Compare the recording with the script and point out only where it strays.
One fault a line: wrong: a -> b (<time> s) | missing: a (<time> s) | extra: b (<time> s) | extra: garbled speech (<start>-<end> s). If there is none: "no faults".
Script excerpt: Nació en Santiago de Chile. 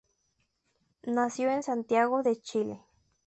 no faults